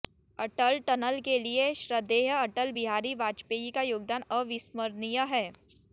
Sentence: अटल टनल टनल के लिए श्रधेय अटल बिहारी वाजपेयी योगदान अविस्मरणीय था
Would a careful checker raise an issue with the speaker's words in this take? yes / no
yes